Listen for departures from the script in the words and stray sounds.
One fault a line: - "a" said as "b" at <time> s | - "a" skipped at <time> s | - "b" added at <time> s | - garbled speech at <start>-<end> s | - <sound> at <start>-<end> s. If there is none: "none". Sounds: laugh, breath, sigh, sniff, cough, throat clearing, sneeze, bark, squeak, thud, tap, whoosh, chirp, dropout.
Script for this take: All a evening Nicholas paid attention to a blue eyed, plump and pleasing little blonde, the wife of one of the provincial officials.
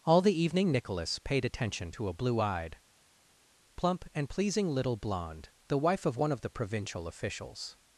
- "a" said as "the" at 0.2 s